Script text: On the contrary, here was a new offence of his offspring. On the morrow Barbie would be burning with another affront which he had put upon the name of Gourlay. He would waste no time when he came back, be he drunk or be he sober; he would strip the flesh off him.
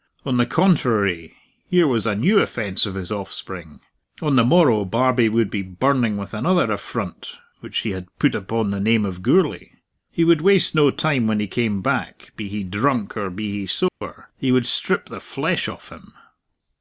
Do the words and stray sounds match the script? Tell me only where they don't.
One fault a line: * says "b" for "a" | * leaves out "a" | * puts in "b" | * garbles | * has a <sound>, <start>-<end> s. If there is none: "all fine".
* has a dropout, 13.9-14.0 s